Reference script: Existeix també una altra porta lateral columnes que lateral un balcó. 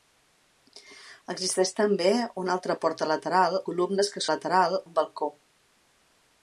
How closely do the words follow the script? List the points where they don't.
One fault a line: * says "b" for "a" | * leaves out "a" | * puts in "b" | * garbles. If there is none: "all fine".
all fine